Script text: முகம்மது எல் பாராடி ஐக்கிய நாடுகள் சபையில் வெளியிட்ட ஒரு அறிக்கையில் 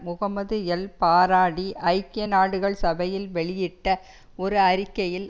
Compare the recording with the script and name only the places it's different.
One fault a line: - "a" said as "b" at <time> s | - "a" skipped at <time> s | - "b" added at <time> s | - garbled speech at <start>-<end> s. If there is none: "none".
none